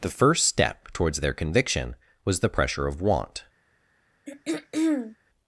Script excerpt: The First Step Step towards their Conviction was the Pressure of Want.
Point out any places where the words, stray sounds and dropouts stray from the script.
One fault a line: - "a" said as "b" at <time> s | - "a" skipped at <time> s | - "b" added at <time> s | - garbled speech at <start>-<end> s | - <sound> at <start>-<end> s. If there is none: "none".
- "Step" skipped at 0.9 s
- throat clearing at 4.3-5.2 s